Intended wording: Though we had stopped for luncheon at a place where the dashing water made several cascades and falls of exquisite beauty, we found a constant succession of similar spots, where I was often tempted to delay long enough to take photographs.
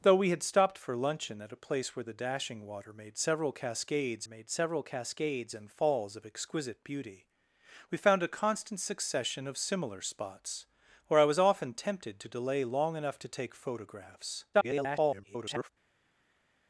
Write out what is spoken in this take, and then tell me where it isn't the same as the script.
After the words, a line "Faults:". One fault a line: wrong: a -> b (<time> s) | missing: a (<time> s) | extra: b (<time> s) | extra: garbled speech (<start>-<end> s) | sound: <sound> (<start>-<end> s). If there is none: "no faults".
Though we had stopped for luncheon at a place where the dashing water made several cascades made several cascades and falls of exquisite beauty, we found a constant succession of similar spots, where I was often tempted to delay long enough to take photographs. [garbled]
Faults:
extra: made several cascades (4.2 s)
extra: garbled speech (14.5-15.7 s)